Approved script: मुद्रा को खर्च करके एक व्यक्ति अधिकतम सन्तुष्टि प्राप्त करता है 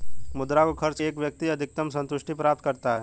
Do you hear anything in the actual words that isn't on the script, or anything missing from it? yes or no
yes